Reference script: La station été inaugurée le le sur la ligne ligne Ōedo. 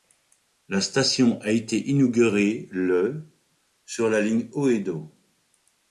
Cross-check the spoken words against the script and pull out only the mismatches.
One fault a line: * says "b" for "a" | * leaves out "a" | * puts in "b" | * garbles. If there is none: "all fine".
* puts in "a"
* leaves out "le"
* leaves out "ligne"